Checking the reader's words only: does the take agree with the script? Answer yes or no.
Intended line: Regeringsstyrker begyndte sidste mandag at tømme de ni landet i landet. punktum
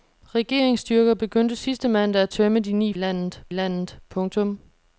yes